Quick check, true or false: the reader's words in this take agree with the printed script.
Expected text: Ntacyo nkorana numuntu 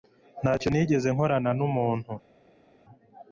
false